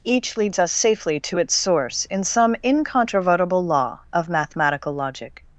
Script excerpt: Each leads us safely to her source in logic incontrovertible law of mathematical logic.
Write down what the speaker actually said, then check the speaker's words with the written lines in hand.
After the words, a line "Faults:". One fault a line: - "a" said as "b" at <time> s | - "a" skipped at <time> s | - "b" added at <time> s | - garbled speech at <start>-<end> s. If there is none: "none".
Each leads us safely to its source in some incontrovertible law of mathematical logic.
Faults:
- "her" said as "its" at 1.4 s
- "logic" said as "some" at 2.2 s